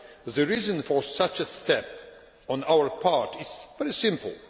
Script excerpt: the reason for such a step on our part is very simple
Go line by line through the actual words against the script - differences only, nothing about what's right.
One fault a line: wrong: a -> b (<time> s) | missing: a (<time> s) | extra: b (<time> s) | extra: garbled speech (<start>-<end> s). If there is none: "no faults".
no faults